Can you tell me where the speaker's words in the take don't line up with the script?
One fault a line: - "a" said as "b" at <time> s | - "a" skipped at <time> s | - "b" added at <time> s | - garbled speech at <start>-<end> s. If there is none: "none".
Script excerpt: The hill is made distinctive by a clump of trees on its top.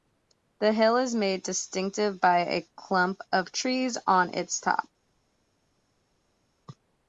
none